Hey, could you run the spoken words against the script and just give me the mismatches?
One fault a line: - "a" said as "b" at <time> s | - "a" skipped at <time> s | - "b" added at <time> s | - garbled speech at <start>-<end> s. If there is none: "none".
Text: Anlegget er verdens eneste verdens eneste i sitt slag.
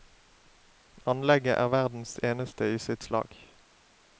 - "verdens eneste" skipped at 2.7 s